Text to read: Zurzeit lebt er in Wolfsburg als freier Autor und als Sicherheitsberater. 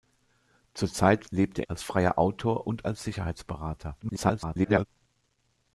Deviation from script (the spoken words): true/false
true